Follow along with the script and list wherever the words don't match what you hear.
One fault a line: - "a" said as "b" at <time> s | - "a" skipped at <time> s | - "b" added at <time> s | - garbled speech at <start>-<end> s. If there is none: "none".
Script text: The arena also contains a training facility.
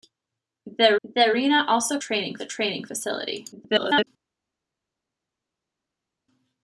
- "the" added at 1.0 s
- "contains" said as "training" at 2.0 s
- garbled speech at 3.5-4.1 s